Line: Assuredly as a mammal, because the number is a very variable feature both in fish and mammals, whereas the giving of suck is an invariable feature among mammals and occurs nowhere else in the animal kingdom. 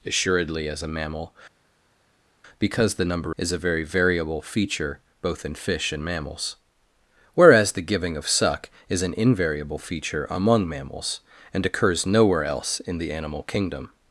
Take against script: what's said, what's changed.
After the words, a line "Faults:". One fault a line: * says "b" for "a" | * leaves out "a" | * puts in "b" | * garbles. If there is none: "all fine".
Assuredly as a mammal, because the number is a very variable feature both in fish and mammals, whereas the giving of suck is an invariable feature among mammals and occurs nowhere else in the animal kingdom.
Faults:
all fine